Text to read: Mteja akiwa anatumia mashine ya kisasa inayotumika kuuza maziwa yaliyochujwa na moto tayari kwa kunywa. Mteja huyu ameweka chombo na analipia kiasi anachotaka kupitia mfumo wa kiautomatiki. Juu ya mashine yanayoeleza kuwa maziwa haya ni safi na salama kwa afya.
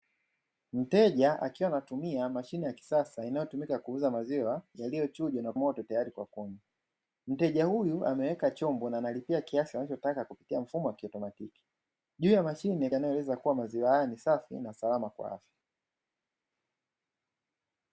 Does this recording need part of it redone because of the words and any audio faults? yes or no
no